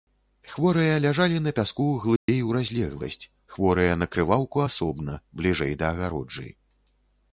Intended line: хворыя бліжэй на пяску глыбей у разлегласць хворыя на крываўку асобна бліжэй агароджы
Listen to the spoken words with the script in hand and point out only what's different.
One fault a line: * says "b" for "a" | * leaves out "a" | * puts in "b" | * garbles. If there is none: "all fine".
* says "ляжалі" for "бліжэй"
* puts in "да"